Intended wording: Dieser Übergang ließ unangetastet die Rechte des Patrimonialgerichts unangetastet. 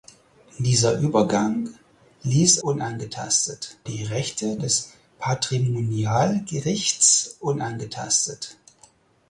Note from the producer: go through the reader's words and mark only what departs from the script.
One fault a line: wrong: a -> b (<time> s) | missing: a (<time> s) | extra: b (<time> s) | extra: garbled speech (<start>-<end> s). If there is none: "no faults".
no faults